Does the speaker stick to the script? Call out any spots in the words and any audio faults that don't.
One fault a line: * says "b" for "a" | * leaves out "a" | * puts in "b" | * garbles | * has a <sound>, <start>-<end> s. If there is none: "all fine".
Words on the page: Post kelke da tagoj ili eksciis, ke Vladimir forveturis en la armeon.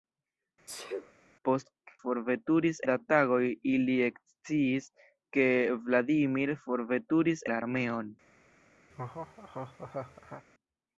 * has a sneeze, 0.7-1.1 s
* says "forveturis" for "kelke"
* leaves out "en"
* has a laugh, 8.9-10.4 s